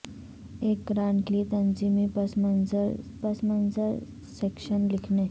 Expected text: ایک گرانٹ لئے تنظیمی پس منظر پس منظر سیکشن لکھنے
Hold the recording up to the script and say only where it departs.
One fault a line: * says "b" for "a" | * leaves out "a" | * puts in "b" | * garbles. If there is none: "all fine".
all fine